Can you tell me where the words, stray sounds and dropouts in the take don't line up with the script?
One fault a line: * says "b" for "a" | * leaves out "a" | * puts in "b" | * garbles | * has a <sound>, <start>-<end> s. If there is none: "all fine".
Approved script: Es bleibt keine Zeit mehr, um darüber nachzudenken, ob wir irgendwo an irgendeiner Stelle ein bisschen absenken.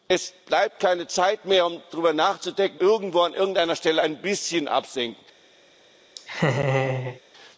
* leaves out "ob wir"
* has a laugh, 6.1-7.2 s